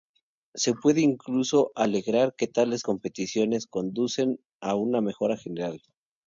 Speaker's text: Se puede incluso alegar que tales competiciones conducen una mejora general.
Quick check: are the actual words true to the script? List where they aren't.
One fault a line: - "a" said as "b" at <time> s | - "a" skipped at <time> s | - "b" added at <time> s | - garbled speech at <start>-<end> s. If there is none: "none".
- "a" added at 4.6 s